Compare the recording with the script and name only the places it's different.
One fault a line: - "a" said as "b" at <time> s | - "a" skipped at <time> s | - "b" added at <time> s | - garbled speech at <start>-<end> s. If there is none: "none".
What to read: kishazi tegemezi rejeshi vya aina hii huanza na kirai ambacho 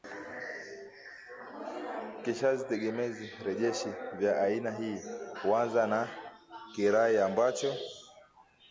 none